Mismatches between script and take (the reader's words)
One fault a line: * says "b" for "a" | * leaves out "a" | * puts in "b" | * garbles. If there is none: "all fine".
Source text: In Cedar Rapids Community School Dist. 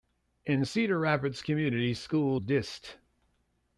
all fine